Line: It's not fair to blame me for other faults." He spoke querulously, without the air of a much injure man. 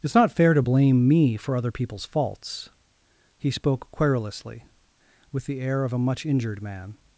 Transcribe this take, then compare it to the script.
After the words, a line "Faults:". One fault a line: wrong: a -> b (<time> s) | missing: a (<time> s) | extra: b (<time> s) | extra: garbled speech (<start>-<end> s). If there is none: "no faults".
It's not fair to blame me for other people's faults." He spoke querulously, with the air of a much injured man.
Faults:
extra: people's (1.7 s)
wrong: without -> with (5.3 s)
wrong: injure -> injured (6.2 s)